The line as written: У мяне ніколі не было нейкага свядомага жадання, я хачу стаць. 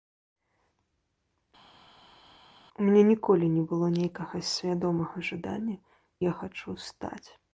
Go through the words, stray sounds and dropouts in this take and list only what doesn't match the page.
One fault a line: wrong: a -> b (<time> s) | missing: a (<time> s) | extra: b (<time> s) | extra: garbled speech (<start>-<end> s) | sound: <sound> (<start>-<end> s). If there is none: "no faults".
no faults